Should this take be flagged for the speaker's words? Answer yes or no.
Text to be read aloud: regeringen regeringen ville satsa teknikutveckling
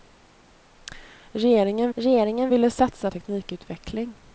no